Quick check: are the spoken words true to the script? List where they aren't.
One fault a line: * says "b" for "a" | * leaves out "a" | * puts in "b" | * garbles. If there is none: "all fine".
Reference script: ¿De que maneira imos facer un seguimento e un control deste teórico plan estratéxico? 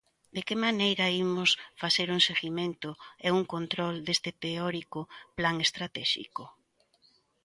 all fine